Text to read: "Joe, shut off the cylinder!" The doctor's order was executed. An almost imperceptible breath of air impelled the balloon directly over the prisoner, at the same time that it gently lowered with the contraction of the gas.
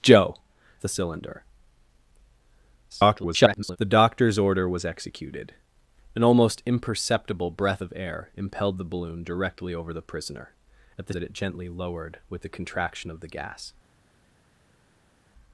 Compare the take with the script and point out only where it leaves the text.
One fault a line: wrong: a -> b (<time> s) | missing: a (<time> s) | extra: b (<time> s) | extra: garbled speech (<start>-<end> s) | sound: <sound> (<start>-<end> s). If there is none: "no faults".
missing: shut off (0.3 s)
extra: garbled speech (2.9-3.8 s)
missing: same time (11.1 s)